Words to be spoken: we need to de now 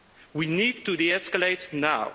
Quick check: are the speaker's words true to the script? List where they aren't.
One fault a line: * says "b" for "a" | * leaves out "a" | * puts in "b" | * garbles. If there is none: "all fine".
* puts in "escalate"